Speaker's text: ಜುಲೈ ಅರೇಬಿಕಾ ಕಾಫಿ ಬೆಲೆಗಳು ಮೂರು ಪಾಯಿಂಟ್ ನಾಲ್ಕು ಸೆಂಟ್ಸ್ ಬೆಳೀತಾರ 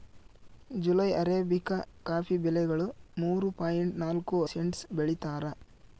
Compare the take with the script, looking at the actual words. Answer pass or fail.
pass